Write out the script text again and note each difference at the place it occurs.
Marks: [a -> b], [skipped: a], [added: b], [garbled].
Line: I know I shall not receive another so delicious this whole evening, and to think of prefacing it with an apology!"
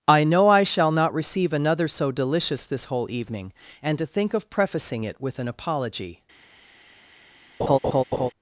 I know I shall not receive another so delicious this whole evening, and to think of prefacing it with an apology!"